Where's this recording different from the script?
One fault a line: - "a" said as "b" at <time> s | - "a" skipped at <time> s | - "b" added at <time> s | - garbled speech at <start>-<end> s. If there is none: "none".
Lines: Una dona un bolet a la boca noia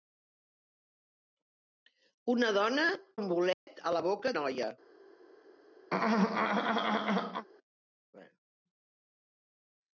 none